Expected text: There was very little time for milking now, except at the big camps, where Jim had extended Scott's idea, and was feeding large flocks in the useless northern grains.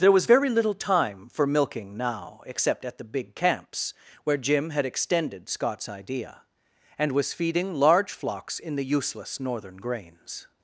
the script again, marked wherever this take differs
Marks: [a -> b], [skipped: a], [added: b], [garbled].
There was very little time for milking now, except at the big camps, where Jim had extended Scott's idea, and was feeding large flocks in the useless northern grains.